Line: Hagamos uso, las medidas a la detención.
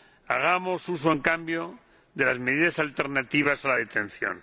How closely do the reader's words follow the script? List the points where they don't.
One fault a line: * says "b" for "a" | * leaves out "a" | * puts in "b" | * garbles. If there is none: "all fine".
* puts in "en cambio de"
* puts in "alternativas"